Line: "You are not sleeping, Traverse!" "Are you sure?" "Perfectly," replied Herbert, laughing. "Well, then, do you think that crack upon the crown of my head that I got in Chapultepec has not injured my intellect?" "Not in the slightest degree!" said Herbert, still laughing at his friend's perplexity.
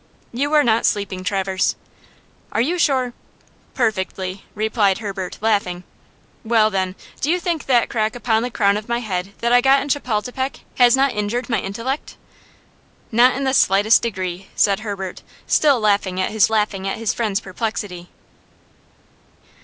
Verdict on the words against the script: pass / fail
fail